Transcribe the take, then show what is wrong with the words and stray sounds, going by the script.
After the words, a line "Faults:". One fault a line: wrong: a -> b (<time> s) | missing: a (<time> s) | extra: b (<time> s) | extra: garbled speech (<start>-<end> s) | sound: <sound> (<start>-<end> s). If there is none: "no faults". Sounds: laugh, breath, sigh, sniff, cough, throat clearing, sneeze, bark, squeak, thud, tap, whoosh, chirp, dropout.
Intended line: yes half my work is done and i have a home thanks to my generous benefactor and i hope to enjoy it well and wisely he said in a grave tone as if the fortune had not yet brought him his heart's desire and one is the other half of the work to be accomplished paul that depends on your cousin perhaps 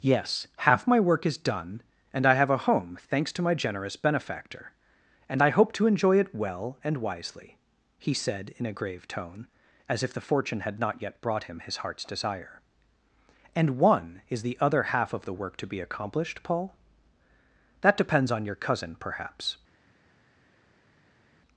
yes half my work is done and i have a home thanks to my generous benefactor and i hope to enjoy it well and wisely he said in a grave tone as if the fortune had not yet brought him his heart's desire and one is the other half of the work to be accomplished paul that depends on your cousin perhaps
Faults:
no faults